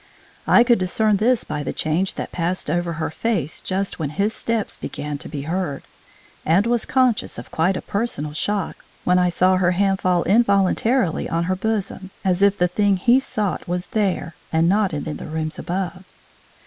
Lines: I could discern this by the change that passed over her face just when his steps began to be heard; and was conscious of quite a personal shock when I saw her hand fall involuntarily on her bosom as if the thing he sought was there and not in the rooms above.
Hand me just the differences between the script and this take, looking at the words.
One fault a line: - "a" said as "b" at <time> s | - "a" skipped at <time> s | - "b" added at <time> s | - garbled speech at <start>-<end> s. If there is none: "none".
- "in" added at 15.1 s